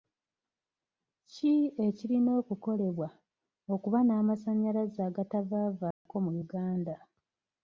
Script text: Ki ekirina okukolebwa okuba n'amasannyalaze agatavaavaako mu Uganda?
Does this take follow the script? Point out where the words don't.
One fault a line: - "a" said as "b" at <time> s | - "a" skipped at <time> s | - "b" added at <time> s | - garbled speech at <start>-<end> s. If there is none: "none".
none